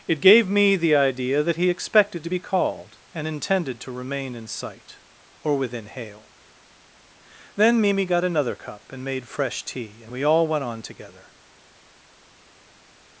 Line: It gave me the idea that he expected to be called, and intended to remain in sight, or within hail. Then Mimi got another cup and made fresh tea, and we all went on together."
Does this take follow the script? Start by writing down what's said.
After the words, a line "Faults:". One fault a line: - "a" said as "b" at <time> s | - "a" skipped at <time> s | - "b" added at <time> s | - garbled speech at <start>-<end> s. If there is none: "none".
It gave me the idea that he expected to be called, and intended to remain in sight, or within hail. Then Mimi got another cup and made fresh tea, and we all went on together."
Faults:
none